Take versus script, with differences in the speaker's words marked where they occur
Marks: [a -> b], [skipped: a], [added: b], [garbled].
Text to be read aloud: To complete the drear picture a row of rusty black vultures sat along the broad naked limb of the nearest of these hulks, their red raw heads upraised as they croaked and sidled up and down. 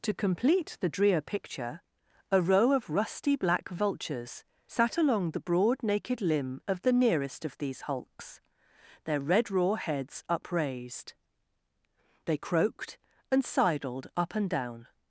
To complete the drear picture a row of rusty black vultures sat along the broad naked limb of the nearest of these hulks, their red raw heads upraised [skipped: as] they croaked and sidled up and down.